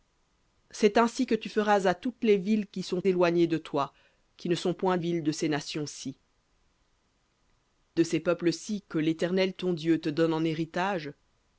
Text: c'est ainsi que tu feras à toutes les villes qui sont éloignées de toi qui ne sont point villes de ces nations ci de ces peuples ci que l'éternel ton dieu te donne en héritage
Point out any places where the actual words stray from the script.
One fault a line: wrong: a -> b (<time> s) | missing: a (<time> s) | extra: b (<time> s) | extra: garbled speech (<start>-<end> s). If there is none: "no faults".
no faults